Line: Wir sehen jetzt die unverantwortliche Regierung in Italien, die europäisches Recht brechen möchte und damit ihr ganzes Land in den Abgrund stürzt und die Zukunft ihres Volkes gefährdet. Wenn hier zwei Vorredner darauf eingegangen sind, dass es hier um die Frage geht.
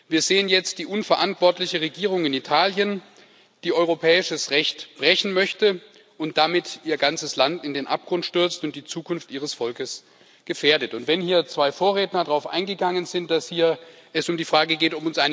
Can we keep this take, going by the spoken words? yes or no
yes